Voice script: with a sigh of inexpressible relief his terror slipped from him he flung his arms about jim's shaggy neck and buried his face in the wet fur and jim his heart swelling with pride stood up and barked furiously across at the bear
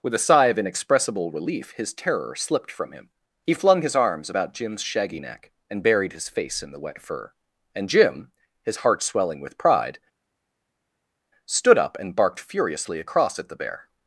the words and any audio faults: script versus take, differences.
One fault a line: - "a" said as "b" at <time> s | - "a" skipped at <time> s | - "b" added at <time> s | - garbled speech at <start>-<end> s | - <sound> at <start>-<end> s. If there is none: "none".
none